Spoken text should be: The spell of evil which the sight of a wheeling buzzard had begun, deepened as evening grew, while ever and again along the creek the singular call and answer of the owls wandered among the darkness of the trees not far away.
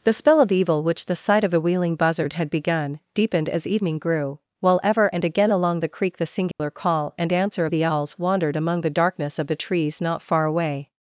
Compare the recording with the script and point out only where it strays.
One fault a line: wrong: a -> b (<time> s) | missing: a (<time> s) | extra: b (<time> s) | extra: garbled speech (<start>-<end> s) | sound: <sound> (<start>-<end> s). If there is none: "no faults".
sound: dropout (6.5-6.6 s)